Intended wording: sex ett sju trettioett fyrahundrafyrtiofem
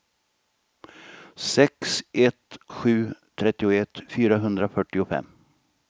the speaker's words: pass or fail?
pass